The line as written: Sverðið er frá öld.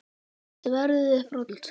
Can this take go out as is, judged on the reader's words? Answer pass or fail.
pass